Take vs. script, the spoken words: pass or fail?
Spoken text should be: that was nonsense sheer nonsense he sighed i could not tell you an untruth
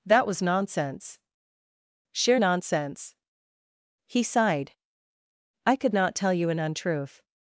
pass